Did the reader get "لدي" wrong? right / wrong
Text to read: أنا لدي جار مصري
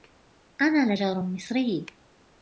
wrong